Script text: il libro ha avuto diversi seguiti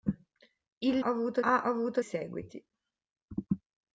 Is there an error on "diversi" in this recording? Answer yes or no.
yes